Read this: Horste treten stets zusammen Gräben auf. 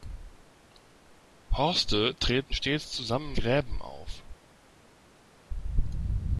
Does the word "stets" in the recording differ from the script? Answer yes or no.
no